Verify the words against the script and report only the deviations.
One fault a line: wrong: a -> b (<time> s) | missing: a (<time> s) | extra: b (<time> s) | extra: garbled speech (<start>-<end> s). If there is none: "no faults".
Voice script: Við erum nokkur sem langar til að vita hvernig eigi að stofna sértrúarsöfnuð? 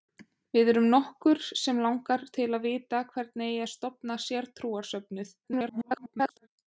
extra: garbled speech (5.4-6.5 s)